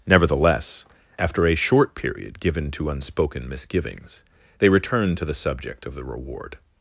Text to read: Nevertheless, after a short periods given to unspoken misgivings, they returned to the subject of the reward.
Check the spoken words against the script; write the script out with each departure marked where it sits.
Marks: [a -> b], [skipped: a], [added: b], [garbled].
Nevertheless, after a short [periods -> period] given to unspoken misgivings, they returned to the subject of the reward.